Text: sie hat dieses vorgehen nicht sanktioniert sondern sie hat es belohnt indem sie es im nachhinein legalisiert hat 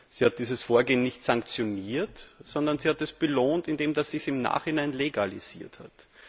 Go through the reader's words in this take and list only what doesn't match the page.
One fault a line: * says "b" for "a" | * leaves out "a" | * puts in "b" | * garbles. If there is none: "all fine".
all fine